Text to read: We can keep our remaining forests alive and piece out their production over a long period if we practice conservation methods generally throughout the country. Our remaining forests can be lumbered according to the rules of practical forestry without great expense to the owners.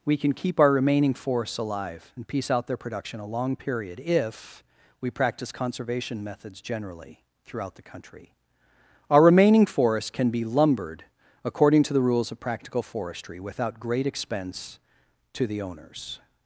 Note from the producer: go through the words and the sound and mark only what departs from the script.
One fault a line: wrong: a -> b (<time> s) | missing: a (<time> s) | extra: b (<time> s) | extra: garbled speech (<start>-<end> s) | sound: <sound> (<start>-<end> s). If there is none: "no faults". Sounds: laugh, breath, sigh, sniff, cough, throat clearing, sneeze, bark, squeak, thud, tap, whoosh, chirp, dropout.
missing: over (3.2 s)